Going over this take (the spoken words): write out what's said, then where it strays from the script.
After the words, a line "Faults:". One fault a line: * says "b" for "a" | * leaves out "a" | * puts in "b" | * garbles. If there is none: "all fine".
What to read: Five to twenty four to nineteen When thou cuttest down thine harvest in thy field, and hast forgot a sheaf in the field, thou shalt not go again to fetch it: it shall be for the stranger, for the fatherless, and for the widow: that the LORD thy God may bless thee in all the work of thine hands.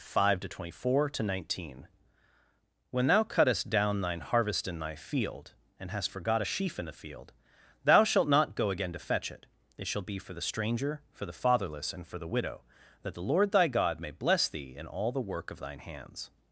Five to twenty four to nineteen When thou cuttest down thine harvest in thy field, and hast forgot a sheaf in the field, thou shalt not go again to fetch it: it shall be for the stranger, for the fatherless, and for the widow: that the LORD thy God may bless thee in all the work of thine hands.
Faults:
all fine